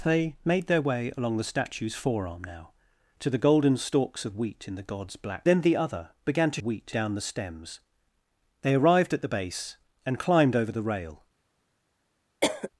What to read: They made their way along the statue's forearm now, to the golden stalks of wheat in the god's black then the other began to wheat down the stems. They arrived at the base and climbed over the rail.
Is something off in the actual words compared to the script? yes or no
no